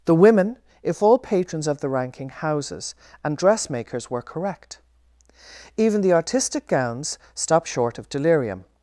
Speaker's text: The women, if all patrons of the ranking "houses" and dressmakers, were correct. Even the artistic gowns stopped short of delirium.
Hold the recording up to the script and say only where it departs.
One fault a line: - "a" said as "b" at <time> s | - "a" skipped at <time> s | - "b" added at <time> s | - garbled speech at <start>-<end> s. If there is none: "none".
none